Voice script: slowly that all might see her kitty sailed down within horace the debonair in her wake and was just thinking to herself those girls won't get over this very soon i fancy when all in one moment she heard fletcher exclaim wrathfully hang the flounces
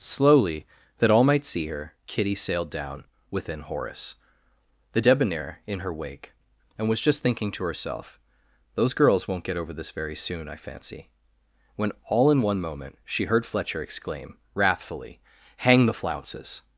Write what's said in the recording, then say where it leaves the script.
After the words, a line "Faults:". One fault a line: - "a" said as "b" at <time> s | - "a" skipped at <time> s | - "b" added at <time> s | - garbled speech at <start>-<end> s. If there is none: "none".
slowly that all might see her kitty sailed down within horace the debonair in her wake and was just thinking to herself those girls won't get over this very soon i fancy when all in one moment she heard fletcher exclaim wrathfully hang the flounces
Faults:
none